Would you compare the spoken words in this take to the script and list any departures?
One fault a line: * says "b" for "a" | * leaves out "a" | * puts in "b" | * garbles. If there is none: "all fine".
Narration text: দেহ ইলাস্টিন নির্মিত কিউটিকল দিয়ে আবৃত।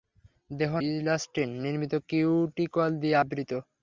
all fine